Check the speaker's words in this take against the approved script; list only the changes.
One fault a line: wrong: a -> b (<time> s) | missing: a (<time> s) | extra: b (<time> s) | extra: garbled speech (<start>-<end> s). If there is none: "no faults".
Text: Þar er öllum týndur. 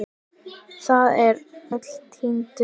no faults